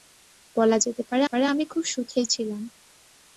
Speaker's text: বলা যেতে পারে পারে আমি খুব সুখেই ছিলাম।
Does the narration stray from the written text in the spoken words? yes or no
no